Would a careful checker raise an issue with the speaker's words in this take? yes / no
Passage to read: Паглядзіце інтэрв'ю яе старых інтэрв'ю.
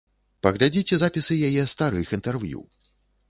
yes